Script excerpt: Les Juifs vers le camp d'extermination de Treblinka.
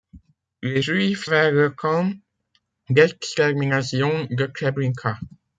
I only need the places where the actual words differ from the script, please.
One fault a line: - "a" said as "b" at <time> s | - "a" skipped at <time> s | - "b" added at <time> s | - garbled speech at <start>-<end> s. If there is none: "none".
none